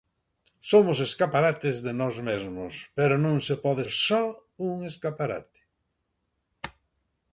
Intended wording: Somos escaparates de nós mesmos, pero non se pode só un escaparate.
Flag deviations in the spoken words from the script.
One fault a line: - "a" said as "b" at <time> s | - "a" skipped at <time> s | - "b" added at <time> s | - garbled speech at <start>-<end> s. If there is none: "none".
none